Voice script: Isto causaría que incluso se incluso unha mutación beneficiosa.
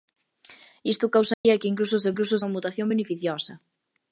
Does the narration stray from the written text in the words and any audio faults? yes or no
yes